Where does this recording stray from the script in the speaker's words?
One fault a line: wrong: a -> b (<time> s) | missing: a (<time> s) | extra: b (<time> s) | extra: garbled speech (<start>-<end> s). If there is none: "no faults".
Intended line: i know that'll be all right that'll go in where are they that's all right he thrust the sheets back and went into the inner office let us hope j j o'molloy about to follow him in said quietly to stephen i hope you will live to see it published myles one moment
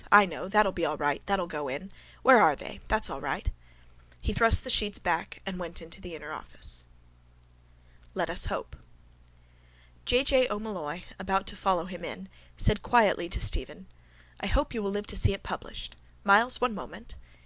no faults